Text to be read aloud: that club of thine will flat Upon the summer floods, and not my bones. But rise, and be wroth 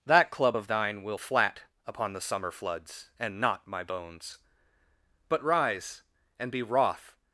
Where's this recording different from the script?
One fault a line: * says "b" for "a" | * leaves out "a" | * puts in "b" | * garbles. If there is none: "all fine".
all fine